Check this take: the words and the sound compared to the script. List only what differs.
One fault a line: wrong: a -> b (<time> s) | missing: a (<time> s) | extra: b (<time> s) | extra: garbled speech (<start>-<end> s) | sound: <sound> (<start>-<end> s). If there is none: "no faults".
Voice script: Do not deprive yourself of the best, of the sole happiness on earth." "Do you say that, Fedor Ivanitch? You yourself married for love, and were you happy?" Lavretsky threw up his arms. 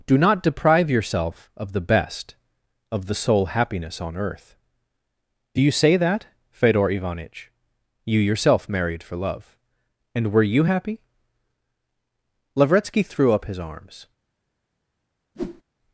sound: whoosh (15.3-15.6 s)